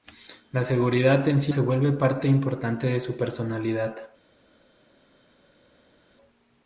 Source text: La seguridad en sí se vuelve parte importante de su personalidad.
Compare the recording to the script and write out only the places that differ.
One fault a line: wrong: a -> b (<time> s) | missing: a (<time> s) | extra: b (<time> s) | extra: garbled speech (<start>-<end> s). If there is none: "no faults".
no faults